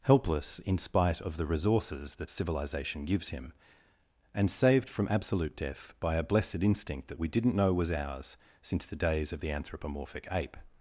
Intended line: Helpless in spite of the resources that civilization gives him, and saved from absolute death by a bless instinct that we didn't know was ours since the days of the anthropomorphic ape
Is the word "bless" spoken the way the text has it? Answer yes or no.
no